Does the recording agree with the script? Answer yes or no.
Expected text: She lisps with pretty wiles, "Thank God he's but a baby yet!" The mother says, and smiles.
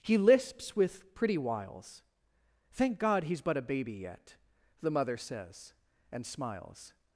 no